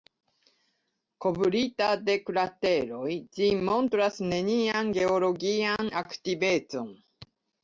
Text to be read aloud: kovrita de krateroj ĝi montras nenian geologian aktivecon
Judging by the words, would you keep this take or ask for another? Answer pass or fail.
pass